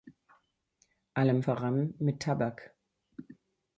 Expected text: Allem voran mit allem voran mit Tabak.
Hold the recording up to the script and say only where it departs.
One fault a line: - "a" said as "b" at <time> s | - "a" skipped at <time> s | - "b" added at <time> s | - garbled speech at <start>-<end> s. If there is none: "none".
- "allem voran mit" skipped at 2.2 s